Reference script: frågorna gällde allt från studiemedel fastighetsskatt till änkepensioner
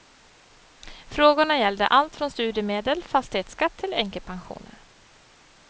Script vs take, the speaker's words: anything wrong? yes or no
no